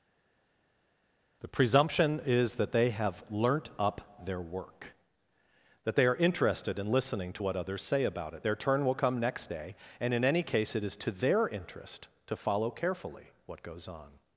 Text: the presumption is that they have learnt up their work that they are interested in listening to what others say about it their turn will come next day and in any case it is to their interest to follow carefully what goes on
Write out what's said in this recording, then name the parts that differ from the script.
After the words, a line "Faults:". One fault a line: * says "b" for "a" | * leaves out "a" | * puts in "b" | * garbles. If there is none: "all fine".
the presumption is that they have learnt up their work that they are interested in listening to what others say about it their turn will come next day and in any case it is to their interest to follow carefully what goes on
Faults:
all fine